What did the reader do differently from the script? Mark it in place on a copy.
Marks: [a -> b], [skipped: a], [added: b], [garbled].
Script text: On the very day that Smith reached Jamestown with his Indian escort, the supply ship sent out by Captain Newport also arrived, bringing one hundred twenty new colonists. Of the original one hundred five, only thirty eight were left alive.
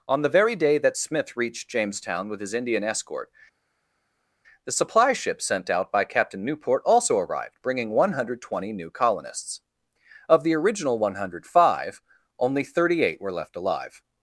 On the very day that Smith reached Jamestown with his Indian escort, the supply ship sent out by Captain Newport also arrived, bringing one hundred twenty new colonists. Of the original one hundred five, only thirty eight were left alive.